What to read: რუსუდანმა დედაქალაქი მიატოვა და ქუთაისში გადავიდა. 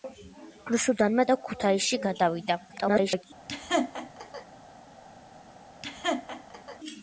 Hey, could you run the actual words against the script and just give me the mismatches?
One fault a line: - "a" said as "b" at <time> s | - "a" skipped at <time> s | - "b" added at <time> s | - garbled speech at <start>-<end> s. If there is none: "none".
- "დედაქალაქი მიატოვა" skipped at 1.2 s
- garbled speech at 2.7-3.2 s